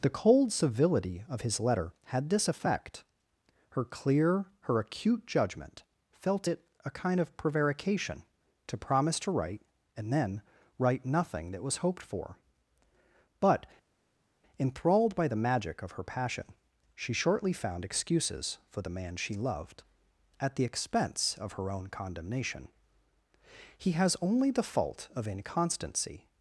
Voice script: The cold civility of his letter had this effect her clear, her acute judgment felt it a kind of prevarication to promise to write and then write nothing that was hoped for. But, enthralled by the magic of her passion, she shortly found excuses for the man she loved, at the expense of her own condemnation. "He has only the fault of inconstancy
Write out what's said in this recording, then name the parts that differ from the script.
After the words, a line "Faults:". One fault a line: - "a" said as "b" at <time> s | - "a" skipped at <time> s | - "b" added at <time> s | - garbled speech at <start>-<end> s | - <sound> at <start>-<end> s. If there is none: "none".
The cold civility of his letter had this effect her clear, her acute judgment felt it a kind of prevarication to promise to write and then write nothing that was hoped for. But, enthralled by the magic of her passion, she shortly found excuses for the man she loved, at the expense of her own condemnation. "He has only the fault of inconstancy
Faults:
none